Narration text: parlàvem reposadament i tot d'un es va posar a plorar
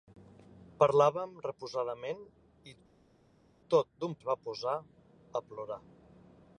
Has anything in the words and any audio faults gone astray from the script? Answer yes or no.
no